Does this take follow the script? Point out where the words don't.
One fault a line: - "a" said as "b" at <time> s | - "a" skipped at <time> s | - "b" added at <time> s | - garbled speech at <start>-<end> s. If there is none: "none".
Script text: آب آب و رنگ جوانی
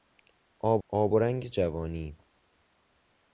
none